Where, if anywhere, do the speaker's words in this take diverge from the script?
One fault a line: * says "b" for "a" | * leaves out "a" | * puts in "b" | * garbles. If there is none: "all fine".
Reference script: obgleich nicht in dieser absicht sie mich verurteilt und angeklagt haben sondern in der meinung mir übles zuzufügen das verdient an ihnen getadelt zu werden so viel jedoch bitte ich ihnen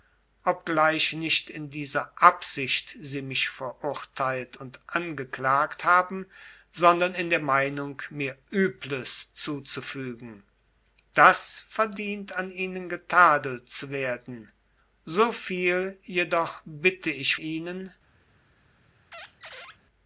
all fine